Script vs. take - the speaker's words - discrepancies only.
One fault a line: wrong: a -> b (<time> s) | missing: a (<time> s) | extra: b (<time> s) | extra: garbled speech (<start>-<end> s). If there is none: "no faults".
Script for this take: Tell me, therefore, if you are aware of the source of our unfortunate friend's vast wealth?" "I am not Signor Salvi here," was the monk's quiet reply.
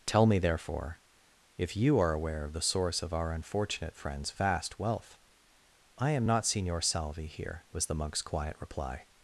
no faults